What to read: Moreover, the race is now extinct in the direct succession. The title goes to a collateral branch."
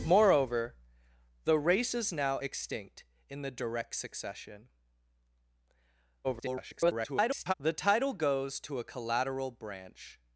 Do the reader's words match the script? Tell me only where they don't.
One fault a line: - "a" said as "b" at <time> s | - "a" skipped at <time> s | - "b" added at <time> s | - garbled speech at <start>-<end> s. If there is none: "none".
- garbled speech at 6.2-7.5 s